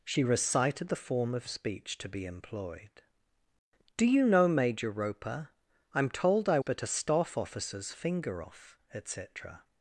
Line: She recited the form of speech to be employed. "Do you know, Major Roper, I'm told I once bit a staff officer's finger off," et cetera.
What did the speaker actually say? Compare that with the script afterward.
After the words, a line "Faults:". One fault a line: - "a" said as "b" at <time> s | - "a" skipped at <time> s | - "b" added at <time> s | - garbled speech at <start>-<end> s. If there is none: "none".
She recited the form of speech to be employed. "Do you know, Major Roper, I'm told I bit a staff officer's finger off," et cetera.
Faults:
- "once" skipped at 6.6 s